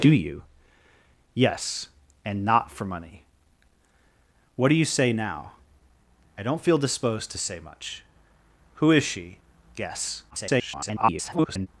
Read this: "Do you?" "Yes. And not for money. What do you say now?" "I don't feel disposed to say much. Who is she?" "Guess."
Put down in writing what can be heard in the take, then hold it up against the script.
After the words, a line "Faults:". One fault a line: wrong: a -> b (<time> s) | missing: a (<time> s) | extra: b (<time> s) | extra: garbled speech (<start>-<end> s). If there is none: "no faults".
"Do you?" "Yes. And not for money. What do you say now?" "I don't feel disposed to say much. Who is she?" "Guess." [garbled]
Faults:
extra: garbled speech (10.3-11.7 s)